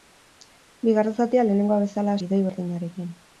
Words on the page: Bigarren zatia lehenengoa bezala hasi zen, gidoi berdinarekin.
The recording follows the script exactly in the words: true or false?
false